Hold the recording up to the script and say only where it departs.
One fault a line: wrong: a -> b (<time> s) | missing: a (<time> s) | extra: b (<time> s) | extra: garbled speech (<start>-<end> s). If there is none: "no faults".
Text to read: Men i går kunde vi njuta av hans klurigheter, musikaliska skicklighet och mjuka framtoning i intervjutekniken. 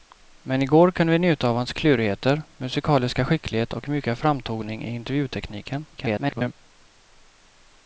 extra: garbled speech (5.9-6.5 s)